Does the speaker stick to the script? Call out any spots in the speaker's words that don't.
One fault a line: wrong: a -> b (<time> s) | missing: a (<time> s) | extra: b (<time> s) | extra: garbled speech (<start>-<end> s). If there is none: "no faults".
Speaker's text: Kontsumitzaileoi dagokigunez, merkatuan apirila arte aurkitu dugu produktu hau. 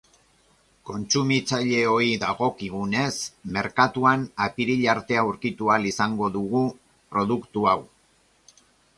extra: ahal izango (5.7 s)